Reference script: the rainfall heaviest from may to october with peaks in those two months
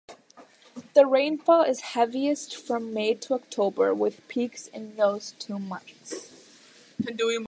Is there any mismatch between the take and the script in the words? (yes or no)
yes